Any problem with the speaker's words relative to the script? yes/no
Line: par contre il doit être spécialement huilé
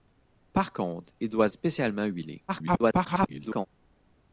yes